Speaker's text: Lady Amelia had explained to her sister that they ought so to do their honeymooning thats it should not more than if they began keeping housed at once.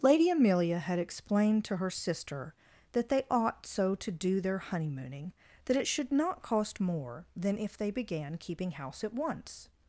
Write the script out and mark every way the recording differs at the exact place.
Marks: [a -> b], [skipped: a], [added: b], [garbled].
Lady Amelia had explained to her sister that they ought so to do their honeymooning [thats -> that] it should not [added: cost] more than if they began keeping [housed -> house] at once.